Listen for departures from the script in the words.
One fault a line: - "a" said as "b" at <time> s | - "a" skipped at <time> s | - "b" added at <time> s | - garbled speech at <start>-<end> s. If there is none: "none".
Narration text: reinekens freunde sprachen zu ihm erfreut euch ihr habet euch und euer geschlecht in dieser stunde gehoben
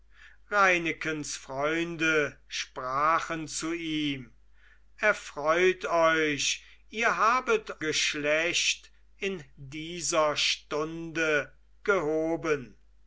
- "euch und euer" skipped at 7.8 s